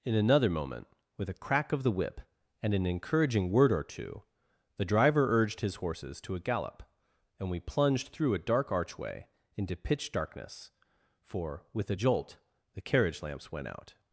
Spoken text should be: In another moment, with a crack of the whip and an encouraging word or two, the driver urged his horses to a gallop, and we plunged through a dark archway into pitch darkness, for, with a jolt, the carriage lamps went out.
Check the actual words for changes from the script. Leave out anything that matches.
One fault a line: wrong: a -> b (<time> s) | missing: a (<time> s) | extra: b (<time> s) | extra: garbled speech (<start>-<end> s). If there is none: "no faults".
no faults